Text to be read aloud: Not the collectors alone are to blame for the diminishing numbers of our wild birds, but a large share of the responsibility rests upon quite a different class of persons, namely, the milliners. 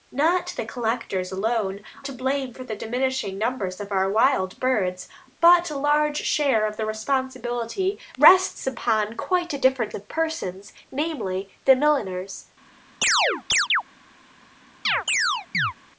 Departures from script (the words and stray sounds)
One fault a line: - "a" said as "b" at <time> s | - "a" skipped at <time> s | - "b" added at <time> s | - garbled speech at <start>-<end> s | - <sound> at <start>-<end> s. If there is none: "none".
- "are" skipped at 1.8 s
- "class" skipped at 9.9 s
- chirp at 13.0-13.8 s
- chirp at 14.8-15.7 s